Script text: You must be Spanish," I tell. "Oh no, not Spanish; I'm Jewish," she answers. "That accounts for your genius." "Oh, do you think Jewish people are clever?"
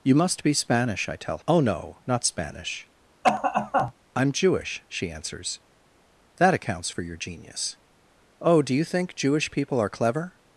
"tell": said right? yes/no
yes